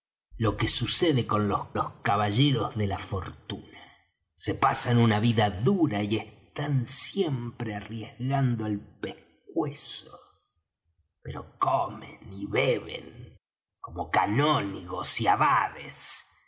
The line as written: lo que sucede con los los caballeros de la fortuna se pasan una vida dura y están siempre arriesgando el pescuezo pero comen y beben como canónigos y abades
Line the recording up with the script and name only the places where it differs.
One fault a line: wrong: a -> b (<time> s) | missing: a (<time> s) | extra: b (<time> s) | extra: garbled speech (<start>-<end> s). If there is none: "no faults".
no faults